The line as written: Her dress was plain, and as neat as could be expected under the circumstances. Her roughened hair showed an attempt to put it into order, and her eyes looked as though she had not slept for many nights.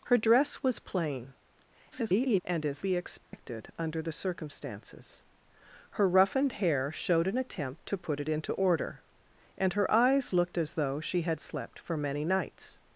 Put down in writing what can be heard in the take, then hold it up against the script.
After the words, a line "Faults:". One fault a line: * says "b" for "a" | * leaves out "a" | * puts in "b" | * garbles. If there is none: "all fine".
Her dress was plain, [garbled] and as be expected under the circumstances. Her roughened hair showed an attempt to put it into order, and her eyes looked as though she had slept for many nights.
Faults:
* garbles
* leaves out "neat as could"
* leaves out "not"